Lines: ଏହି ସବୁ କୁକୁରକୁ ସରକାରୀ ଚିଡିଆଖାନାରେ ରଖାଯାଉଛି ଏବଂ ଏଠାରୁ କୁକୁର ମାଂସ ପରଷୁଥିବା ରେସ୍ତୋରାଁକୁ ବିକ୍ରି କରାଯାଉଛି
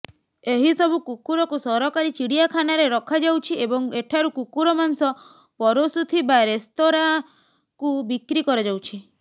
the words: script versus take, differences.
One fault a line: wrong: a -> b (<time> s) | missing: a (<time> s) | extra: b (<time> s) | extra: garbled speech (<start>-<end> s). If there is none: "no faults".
no faults